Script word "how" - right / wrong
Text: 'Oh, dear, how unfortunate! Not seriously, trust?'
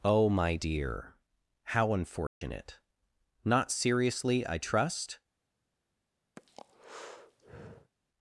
right